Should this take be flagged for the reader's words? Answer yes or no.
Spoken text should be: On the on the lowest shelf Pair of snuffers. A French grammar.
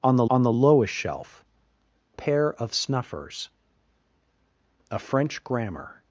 no